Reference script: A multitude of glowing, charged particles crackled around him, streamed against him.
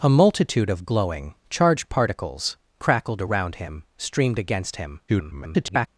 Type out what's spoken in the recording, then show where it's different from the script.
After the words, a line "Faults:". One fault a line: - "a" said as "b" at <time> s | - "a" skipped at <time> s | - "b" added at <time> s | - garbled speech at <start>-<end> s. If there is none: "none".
A multitude of glowing, charged particles crackled around him, streamed against him. [garbled]
Faults:
- garbled speech at 5.1-5.9 s